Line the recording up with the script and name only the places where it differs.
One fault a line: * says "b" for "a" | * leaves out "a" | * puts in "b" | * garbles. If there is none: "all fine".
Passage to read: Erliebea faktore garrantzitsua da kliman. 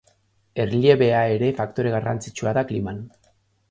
* puts in "ere"